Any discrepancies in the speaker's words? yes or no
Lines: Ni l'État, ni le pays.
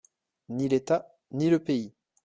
no